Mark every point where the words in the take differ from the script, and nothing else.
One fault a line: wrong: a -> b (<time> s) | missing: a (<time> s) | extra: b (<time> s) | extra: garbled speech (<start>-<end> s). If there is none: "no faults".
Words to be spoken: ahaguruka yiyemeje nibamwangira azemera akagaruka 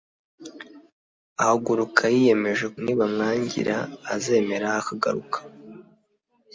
no faults